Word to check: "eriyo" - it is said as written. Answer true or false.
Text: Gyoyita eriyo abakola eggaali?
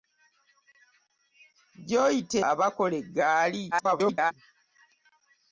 false